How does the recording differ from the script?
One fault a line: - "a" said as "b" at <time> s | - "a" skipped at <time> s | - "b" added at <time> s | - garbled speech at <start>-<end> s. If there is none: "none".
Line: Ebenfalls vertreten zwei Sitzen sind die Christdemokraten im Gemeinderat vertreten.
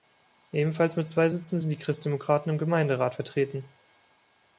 - "vertreten" said as "mit" at 0.9 s